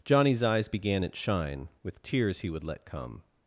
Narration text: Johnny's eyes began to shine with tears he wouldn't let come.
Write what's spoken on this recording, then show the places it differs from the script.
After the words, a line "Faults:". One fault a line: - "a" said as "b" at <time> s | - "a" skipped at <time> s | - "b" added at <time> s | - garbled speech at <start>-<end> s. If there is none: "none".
Johnny's eyes began at shine with tears he would let come.
Faults:
- "to" said as "at" at 1.0 s
- "wouldn't" said as "would" at 2.5 s